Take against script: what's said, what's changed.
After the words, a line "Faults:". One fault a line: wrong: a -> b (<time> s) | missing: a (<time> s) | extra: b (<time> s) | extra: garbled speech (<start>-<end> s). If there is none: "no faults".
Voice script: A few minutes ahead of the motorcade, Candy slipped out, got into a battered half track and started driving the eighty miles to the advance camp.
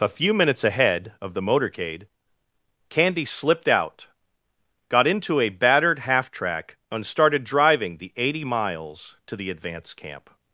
A few minutes ahead of the motorcade, Candy slipped out, got into a battered half track and started driving the eighty miles to the advance camp.
Faults:
no faults